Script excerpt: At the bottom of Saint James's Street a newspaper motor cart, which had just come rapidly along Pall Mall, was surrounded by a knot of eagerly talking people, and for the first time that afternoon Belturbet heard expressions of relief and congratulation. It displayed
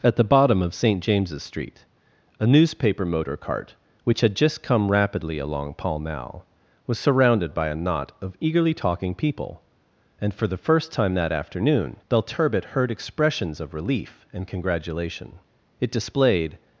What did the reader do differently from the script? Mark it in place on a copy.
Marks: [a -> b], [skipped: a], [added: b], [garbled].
At the bottom of Saint James's Street a newspaper motor cart, which had just come rapidly along Pall Mall, was surrounded by a knot of eagerly talking people, and for the first time that afternoon Belturbet heard expressions of relief and congratulation. It displayed